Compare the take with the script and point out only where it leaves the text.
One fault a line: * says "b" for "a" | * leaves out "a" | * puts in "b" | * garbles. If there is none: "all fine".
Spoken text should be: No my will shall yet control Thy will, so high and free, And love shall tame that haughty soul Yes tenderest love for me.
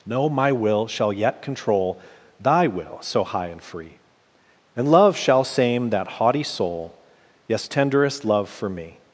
* says "same" for "tame"